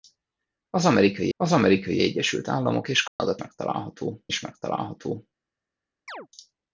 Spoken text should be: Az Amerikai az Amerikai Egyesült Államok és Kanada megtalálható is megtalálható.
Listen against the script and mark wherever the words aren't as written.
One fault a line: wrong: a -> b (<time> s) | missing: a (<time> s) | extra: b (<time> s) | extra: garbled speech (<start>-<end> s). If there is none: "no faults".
no faults